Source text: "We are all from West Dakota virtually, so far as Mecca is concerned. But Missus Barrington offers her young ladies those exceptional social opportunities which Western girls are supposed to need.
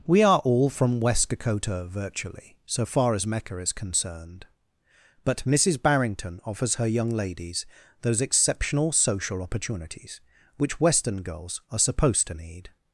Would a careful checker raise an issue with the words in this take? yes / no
no